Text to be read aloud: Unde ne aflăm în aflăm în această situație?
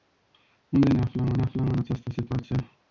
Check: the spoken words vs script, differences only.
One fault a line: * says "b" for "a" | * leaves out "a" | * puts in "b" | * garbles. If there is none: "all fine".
all fine